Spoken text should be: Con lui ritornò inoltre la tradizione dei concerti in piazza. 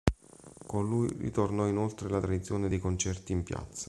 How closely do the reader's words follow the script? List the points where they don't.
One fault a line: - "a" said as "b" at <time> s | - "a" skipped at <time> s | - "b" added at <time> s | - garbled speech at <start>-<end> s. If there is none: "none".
none